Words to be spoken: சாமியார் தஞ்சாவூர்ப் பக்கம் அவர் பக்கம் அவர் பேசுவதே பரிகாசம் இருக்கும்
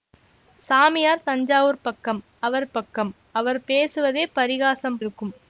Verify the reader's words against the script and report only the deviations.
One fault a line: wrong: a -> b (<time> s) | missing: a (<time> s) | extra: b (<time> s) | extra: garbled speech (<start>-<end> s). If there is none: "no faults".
no faults